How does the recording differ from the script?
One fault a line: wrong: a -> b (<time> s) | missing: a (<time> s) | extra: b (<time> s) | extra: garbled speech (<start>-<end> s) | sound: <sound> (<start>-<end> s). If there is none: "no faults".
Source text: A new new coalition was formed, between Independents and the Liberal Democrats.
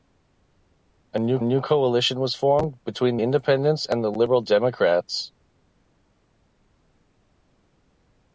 no faults